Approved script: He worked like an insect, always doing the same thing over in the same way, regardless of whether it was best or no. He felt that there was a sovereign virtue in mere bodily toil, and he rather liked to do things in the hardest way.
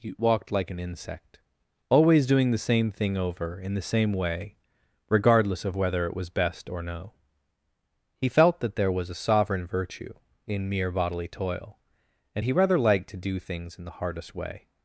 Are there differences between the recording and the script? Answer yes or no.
yes